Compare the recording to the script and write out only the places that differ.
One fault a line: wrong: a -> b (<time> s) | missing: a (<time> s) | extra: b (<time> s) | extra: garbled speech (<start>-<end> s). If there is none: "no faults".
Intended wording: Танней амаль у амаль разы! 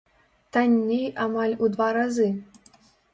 wrong: амаль -> два (1.7 s)